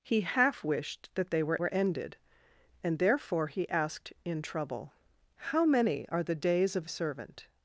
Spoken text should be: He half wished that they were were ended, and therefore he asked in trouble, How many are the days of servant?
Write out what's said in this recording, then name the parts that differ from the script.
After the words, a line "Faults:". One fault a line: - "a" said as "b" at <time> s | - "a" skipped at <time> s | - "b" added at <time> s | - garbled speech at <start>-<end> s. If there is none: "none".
He half wished that they were were ended, and therefore he asked in trouble, How many are the days of servant?
Faults:
none